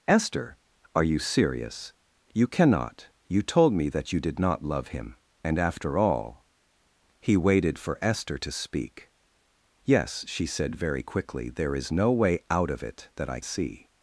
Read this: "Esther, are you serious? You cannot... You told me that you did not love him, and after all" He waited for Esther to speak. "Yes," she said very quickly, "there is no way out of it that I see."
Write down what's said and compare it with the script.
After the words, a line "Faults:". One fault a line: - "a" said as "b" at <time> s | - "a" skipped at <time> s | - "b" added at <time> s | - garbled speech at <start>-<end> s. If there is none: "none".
"Esther, are you serious? You cannot... You told me that you did not love him, and after all" He waited for Esther to speak. "Yes," she said very quickly, "there is no way out of it that I see."
Faults:
none